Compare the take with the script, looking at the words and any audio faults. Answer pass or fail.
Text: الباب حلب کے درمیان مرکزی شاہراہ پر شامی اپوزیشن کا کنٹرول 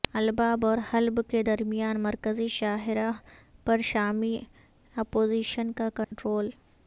fail